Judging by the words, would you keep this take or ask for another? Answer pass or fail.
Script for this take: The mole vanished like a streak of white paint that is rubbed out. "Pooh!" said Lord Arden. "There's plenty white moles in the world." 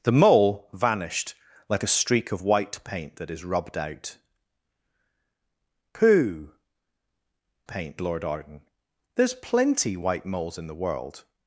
fail